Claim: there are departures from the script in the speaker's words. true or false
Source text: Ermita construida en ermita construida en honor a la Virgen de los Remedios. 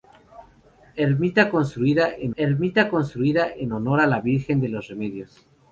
false